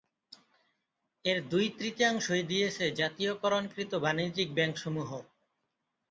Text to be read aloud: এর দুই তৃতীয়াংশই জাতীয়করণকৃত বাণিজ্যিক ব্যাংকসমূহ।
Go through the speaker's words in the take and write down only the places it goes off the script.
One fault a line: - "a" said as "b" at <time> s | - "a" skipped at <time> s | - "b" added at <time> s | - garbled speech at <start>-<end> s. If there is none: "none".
- "দিয়েছে" added at 2.4 s